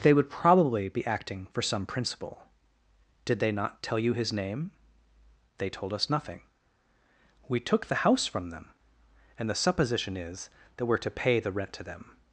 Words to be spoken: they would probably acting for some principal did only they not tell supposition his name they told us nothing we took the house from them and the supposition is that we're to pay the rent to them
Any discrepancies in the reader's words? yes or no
yes